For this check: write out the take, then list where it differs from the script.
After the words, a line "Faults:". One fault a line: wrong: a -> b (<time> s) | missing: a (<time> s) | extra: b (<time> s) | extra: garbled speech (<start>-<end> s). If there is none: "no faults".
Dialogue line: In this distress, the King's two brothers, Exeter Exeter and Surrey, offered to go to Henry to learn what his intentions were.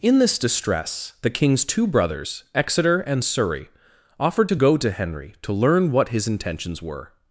In this distress, the King's two brothers, Exeter and Surrey, offered to go to Henry to learn what his intentions were.
Faults:
missing: Exeter (3.0 s)